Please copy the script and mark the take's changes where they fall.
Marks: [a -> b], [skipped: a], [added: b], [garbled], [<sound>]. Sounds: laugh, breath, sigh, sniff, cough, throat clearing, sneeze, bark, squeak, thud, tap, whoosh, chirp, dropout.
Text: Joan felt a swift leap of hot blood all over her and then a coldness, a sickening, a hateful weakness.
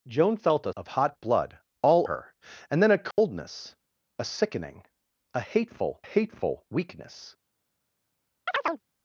Joan felt a [skipped: swift leap] of hot blood all [skipped: over] her and then a coldness, [dropout] a sickening, a hateful [added: hateful] weakness. [chirp]